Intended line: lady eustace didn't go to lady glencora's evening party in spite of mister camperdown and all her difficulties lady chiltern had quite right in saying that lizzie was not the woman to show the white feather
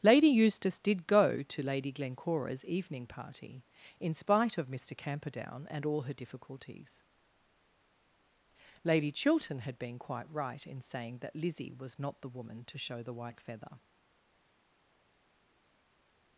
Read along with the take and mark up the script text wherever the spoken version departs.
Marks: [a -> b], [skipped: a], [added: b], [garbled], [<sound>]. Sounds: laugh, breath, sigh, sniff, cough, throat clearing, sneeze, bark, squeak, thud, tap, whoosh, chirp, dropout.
lady eustace [didn't -> did] go to lady glencora's evening party in spite of mister camperdown and all her difficulties lady chiltern had [added: been] quite right in saying that lizzie was not the woman to show the white feather